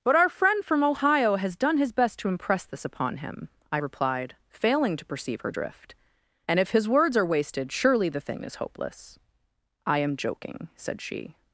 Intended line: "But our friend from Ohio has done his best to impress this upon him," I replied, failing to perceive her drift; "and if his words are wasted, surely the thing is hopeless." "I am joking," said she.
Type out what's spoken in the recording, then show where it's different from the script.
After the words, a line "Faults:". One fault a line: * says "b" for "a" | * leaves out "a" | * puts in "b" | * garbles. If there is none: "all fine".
"But our friend from Ohio has done his best to impress this upon him," I replied, failing to perceive her drift; "and if his words are wasted, surely the thing is hopeless." "I am joking," said she.
Faults:
all fine